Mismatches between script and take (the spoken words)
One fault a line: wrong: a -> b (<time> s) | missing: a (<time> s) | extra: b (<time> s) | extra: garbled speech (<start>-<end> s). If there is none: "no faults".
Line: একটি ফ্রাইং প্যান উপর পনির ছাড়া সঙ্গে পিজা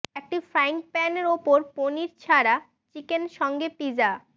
extra: চিকেন (3.0 s)